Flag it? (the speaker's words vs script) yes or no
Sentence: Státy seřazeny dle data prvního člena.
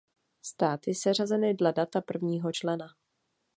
no